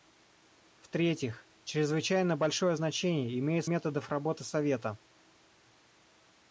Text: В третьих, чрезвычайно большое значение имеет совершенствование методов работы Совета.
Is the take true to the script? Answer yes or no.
no